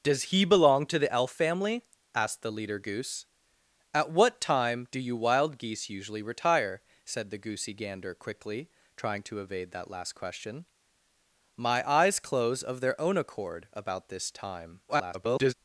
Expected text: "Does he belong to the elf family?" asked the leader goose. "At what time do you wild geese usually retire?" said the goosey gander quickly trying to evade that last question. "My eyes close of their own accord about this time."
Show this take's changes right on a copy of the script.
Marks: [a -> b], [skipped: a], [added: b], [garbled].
"Does he belong to the elf family?" asked the leader goose. "At what time do you wild geese usually retire?" said the goosey gander quickly trying to evade that last question. "My eyes close of their own accord about this time." [garbled]